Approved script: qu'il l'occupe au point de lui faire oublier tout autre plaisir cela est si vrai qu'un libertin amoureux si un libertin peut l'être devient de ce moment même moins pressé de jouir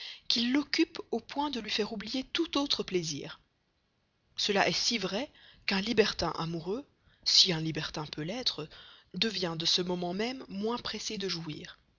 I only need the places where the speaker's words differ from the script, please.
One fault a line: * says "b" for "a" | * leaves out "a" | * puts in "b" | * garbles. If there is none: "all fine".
all fine